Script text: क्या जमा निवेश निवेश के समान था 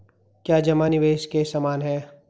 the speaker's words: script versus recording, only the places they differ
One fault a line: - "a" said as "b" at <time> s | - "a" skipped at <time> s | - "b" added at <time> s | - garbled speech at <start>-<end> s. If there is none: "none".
- "निवेश" skipped at 1.3 s
- "था" said as "है" at 1.8 s